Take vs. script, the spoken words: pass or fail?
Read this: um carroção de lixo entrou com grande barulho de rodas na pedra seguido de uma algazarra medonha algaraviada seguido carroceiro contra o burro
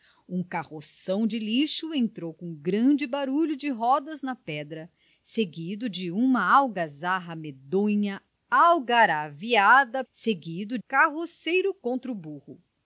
pass